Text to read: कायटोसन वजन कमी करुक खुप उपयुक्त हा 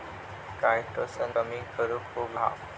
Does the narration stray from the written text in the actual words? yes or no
yes